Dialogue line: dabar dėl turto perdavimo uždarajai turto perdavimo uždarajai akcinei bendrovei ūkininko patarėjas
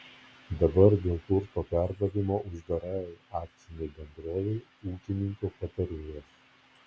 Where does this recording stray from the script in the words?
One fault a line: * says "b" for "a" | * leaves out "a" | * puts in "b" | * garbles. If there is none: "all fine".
* leaves out "turto perdavimo uždarajai"